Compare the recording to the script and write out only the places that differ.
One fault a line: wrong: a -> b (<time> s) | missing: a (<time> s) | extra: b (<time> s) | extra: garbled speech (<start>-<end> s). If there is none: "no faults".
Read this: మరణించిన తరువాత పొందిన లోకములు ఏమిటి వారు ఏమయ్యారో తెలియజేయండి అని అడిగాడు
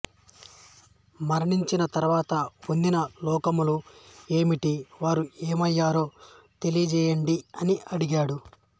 no faults